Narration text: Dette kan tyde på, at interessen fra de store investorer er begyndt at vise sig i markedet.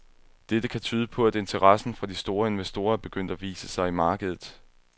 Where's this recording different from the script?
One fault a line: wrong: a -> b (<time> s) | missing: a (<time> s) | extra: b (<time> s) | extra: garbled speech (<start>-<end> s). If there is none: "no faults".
no faults